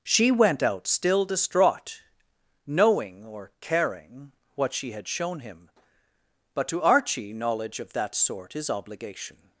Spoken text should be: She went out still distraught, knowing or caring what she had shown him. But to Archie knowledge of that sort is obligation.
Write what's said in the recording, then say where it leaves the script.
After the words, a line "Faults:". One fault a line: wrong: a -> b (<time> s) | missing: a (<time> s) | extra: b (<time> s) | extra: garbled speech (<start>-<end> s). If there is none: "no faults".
She went out still distraught, knowing or caring what she had shown him. But to Archie knowledge of that sort is obligation.
Faults:
no faults